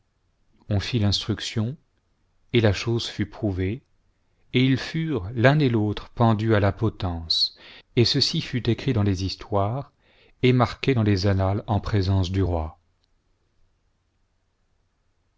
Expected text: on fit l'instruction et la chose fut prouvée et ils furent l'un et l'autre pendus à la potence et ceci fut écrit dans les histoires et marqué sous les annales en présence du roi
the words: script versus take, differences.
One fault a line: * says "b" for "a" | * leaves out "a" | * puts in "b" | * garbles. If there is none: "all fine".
* says "dans" for "sous"